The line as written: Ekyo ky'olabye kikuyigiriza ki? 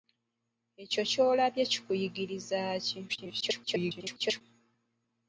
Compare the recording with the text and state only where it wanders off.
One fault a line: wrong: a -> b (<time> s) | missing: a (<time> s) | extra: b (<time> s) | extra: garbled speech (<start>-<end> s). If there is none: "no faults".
extra: garbled speech (3.1-4.4 s)